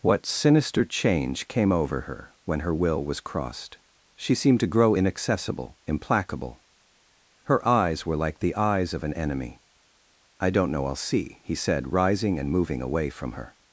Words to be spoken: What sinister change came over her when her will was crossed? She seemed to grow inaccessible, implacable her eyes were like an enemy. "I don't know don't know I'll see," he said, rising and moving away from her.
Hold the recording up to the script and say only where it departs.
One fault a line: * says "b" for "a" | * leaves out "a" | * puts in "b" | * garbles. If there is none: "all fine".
* puts in "the eyes of"
* leaves out "don't know"